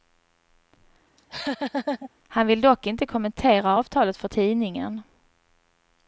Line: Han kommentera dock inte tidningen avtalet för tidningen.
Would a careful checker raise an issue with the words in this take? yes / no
yes